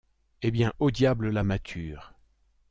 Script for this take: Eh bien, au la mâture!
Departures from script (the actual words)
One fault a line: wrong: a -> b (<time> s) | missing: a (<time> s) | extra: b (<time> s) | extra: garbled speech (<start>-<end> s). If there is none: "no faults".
extra: diable (0.9 s)